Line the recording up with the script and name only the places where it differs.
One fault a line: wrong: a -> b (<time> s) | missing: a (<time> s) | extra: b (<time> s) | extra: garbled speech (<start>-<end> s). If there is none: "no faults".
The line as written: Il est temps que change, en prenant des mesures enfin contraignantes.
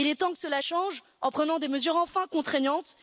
extra: cela (0.4 s)